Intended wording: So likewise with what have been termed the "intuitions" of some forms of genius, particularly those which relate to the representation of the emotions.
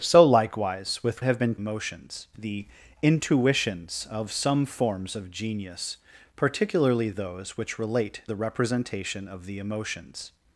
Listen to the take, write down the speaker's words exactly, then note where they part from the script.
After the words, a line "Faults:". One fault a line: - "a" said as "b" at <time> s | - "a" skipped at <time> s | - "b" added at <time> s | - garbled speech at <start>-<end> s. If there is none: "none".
So likewise with have been emotions the "intuitions" of some forms of genius, particularly those which relate the representation of the emotions.
Faults:
- "what" skipped at 1.2 s
- "termed" said as "emotions" at 1.5 s
- "to" skipped at 8.2 s